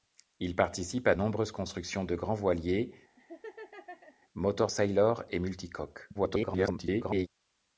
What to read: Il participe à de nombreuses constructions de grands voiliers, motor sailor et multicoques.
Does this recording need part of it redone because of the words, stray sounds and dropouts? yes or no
yes